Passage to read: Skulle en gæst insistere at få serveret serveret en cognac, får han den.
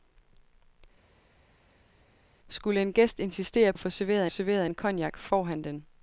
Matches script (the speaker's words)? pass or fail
pass